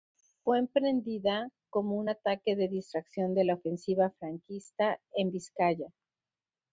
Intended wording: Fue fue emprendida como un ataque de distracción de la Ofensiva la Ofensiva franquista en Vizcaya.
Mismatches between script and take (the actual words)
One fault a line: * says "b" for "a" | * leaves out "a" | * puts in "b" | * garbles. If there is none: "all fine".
* leaves out "fue"
* leaves out "la Ofensiva"